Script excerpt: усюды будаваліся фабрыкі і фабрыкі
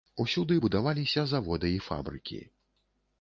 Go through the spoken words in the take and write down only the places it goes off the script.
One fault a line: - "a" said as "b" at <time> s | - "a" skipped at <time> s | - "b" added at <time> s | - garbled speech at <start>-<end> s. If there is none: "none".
- "фабрыкі" said as "заводы" at 1.3 s